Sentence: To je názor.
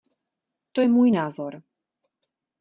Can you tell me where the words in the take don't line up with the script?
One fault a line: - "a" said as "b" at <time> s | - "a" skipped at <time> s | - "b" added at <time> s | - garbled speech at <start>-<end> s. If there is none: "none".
- "můj" added at 0.9 s